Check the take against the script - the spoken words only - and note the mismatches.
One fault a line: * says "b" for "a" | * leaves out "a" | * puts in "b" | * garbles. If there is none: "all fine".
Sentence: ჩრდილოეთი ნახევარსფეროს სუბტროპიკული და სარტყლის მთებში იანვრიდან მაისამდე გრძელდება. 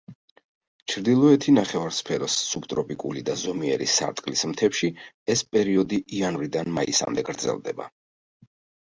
* puts in "ზომიერი"
* puts in "ეს პერიოდი"